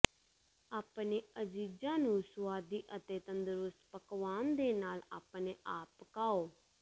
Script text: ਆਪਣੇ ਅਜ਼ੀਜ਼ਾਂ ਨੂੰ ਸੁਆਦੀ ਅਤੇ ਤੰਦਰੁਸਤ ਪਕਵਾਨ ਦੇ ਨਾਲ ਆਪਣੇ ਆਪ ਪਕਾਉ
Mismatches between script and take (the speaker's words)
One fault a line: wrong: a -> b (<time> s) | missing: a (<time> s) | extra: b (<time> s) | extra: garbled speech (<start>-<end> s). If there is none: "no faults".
no faults